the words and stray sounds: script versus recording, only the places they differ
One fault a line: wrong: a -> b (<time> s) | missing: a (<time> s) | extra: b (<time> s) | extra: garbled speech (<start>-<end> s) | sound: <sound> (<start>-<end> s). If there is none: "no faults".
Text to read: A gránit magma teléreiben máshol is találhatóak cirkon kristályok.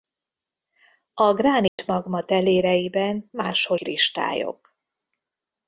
sound: dropout (1.7-1.8 s)
missing: is találhatóak cirkon (3.8 s)